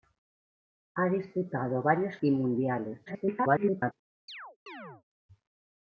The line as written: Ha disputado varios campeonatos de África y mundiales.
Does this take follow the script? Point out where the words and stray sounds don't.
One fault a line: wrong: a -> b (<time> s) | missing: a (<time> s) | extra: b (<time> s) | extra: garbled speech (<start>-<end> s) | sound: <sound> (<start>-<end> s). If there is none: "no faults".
missing: campeonatos de África (2.2 s)
extra: garbled speech (3.1-3.9 s)
sound: chirp (4.3-5.0 s)